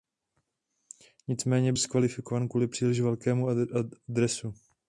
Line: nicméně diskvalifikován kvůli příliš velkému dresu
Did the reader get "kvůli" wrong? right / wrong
right